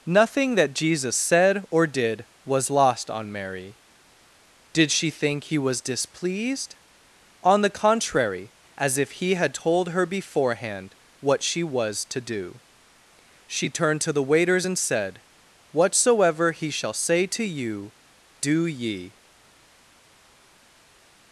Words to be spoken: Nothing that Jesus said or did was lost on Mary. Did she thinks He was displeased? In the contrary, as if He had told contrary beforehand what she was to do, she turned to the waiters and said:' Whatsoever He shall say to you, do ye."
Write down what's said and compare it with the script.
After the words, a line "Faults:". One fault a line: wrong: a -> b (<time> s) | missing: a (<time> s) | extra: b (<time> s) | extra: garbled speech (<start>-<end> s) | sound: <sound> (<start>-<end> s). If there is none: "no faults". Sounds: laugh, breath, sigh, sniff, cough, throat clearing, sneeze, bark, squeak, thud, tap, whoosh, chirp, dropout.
Nothing that Jesus said or did was lost on Mary. Did she think He was displeased? On the contrary, as if He had told her beforehand what she was to do, she turned to the waiters and said:' Whatsoever He shall say to you, do ye."
Faults:
wrong: thinks -> think (5.1 s)
wrong: In -> On (7.4 s)
wrong: contrary -> her (9.9 s)